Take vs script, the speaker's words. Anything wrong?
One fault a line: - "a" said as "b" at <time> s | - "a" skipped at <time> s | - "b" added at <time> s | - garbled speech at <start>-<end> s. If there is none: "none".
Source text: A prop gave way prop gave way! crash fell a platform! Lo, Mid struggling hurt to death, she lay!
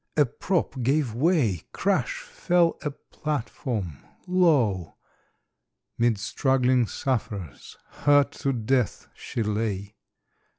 - "prop gave way" skipped at 1.6 s
- "sufferers" added at 6.9 s